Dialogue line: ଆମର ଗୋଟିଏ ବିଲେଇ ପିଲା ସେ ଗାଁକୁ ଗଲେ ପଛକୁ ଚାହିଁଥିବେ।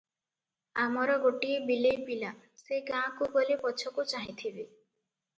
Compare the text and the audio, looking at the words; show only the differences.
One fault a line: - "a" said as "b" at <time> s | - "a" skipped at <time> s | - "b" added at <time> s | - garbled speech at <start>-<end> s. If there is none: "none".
none